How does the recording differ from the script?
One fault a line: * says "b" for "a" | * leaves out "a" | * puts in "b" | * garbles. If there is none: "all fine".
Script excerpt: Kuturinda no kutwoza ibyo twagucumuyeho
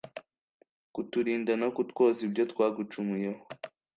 all fine